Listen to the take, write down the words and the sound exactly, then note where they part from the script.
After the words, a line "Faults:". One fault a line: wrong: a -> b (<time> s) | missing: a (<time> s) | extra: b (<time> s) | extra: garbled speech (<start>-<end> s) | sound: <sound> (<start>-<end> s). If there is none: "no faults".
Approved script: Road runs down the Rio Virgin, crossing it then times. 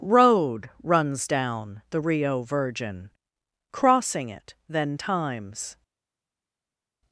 Road runs down the Rio Virgin, crossing it then times.
Faults:
no faults